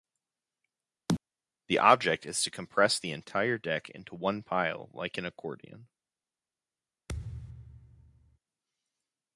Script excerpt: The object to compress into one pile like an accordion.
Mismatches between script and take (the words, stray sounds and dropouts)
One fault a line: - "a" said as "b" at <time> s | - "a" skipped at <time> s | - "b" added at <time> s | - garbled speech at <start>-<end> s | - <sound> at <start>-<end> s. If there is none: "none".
- chirp at 1.1-1.2 s
- "is" added at 2.3 s
- "the entire deck" added at 3.0 s
- thud at 7.1-8.4 s